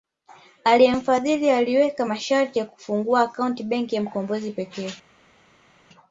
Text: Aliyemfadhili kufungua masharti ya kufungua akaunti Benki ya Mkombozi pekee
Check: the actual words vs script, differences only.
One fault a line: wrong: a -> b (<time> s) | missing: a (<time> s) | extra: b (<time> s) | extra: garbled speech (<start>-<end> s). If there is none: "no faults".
wrong: kufungua -> aliweka (1.5 s)